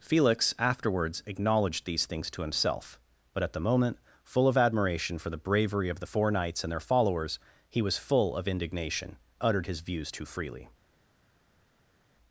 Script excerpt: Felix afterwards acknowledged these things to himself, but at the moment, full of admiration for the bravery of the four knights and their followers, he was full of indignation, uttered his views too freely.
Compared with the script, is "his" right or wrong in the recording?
right